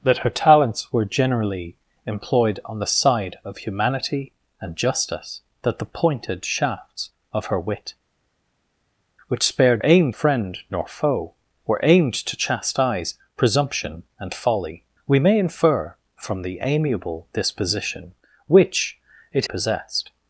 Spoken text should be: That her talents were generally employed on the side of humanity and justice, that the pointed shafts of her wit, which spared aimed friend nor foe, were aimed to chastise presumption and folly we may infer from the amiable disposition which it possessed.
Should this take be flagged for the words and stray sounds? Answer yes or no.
no